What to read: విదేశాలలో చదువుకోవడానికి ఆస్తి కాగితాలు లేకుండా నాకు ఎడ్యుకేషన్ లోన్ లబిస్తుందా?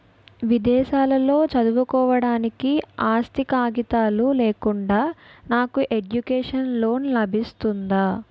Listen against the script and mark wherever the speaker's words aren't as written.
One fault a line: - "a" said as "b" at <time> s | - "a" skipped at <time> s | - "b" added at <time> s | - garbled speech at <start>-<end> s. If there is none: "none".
none